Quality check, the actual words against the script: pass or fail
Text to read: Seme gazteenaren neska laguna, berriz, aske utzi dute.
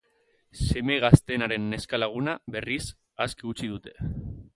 pass